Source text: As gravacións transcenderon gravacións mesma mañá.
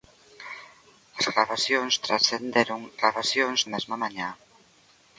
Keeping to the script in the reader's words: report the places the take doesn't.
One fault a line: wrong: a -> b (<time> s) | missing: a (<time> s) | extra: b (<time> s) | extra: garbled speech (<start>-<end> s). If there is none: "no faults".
no faults